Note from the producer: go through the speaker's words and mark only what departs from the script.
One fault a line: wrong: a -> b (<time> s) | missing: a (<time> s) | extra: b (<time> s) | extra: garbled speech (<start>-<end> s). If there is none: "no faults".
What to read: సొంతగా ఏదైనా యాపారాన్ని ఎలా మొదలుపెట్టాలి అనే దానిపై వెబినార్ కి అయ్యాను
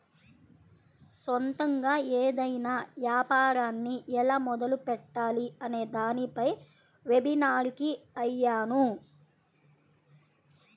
no faults